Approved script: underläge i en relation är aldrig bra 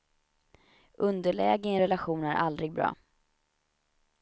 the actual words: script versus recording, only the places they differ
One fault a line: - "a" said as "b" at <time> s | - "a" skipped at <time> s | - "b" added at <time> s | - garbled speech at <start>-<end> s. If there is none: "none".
none